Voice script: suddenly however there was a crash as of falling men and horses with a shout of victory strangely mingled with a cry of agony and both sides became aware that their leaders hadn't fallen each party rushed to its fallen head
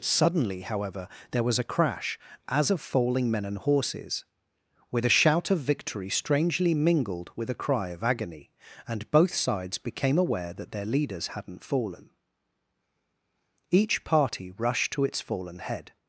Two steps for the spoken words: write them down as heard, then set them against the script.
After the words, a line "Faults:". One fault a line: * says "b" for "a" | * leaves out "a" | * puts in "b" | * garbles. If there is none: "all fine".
suddenly however there was a crash as of falling men and horses with a shout of victory strangely mingled with a cry of agony and both sides became aware that their leaders hadn't fallen each party rushed to its fallen head
Faults:
all fine